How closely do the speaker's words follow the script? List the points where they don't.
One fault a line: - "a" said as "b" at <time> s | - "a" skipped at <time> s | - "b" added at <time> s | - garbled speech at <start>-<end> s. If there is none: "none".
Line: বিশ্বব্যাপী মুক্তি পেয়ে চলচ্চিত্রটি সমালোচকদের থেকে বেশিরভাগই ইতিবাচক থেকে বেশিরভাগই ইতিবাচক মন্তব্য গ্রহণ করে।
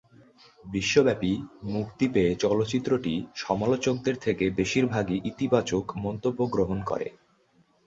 - "থেকে বেশিরভাগই ইতিবাচক" skipped at 5.8 s